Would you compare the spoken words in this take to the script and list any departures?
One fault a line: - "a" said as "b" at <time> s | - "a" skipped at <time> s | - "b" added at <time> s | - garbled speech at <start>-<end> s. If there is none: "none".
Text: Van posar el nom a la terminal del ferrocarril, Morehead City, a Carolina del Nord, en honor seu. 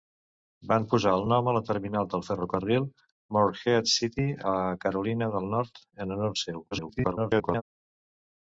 - garbled speech at 6.7-7.6 s